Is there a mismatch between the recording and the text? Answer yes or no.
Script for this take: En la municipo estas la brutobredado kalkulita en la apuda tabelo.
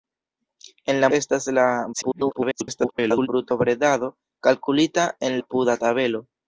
yes